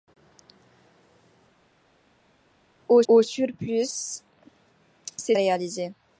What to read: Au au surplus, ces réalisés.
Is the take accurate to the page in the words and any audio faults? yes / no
yes